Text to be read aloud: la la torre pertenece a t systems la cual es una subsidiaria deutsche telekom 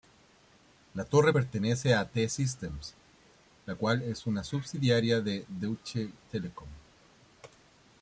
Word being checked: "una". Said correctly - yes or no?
yes